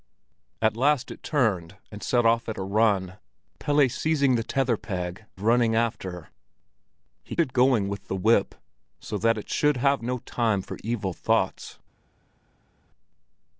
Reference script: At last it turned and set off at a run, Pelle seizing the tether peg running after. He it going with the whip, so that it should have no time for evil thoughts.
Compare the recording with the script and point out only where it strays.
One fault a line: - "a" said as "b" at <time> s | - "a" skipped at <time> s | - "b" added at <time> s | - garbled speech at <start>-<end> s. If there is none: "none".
none